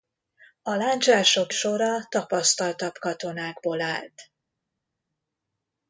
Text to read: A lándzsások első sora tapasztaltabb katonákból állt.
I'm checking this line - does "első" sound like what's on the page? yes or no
no